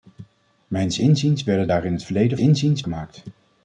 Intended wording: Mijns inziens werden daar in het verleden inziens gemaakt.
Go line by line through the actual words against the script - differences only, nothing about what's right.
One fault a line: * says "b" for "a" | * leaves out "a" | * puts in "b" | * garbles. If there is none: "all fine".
all fine